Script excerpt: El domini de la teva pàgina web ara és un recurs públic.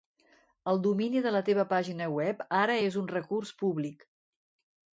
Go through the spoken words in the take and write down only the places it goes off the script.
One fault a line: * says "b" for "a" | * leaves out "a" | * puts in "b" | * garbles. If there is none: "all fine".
all fine